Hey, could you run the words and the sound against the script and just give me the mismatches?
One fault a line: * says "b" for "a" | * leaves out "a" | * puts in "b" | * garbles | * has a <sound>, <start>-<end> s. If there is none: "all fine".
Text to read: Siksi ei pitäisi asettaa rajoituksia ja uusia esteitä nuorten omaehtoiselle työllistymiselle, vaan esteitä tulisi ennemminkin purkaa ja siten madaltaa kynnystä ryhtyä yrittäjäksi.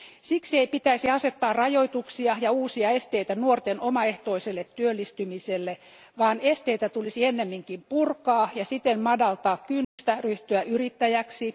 * has a dropout, 9.8-10.0 s